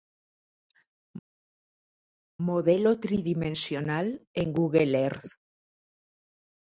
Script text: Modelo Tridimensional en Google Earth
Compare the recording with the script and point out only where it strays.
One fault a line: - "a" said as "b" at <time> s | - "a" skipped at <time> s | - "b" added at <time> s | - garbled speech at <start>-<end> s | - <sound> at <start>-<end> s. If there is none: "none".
none